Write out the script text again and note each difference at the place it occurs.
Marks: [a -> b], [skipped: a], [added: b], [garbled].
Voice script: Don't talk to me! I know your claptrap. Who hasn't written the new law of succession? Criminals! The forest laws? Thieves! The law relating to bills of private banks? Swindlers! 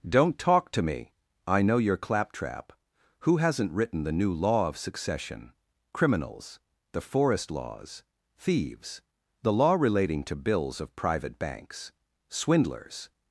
Don't talk to me! I know your claptrap. Who hasn't written the new law of succession? Criminals! The forest laws? Thieves! The law relating to bills of private banks? Swindlers!